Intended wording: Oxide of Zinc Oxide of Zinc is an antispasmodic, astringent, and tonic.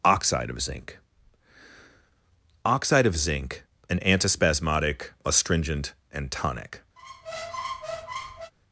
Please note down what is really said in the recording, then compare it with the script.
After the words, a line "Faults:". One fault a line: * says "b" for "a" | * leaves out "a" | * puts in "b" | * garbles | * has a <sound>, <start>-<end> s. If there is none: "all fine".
Oxide of Zinc Oxide of Zinc an antispasmodic, astringent, and tonic.
Faults:
* leaves out "is"
* has a squeak, 7.0-8.5 s